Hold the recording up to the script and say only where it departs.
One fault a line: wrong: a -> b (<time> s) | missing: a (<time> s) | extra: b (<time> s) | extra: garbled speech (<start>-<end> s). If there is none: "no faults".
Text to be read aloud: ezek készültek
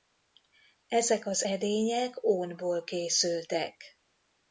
extra: az edények ónból (1.2 s)